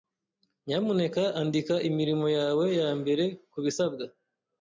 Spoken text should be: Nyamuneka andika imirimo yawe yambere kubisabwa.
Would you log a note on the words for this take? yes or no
no